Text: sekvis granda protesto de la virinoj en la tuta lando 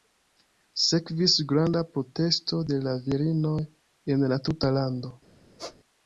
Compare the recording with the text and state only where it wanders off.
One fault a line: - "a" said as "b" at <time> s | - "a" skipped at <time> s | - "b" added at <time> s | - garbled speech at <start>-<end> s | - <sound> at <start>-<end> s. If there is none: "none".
- squeak at 5.6-5.8 s